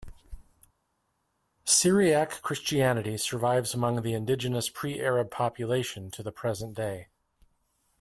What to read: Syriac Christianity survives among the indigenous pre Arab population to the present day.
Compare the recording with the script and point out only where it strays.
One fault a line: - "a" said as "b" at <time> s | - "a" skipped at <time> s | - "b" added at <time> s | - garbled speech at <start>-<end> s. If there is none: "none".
none